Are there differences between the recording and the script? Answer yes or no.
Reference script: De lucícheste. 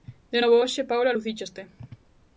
yes